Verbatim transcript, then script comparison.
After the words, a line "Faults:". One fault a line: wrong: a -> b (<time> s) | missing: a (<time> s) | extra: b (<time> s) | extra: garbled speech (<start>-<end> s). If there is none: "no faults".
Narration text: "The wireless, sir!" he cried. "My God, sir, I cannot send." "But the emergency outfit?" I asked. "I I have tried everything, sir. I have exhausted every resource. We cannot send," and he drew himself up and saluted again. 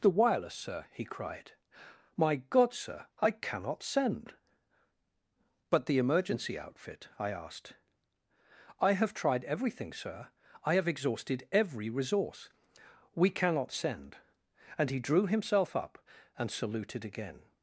"The wireless, sir!" he cried. "My God, sir, I cannot send." "But the emergency outfit?" I asked. "I have tried everything, sir. I have exhausted every resource. We cannot send," and he drew himself up and saluted again.
Faults:
missing: I (8.9 s)